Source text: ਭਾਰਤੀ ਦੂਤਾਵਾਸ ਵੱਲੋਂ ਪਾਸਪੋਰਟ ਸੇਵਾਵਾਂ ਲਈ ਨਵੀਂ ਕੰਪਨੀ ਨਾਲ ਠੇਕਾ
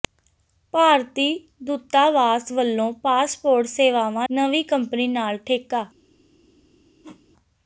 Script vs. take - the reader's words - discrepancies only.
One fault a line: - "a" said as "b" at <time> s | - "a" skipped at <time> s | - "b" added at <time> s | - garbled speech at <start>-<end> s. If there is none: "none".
- "ਲਈ" skipped at 4.3 s